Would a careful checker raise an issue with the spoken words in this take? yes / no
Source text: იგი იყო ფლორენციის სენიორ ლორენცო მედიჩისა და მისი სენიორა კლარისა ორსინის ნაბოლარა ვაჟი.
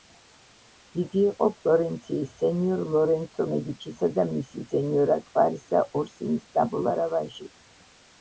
no